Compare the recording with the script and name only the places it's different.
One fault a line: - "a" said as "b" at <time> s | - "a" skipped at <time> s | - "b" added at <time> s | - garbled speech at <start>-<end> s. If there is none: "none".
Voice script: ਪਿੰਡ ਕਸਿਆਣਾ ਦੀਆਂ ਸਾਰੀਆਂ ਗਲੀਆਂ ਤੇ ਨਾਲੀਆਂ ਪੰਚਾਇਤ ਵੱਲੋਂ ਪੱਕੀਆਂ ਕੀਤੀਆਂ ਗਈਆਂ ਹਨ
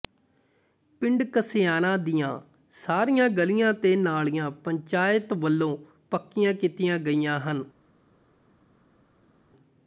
none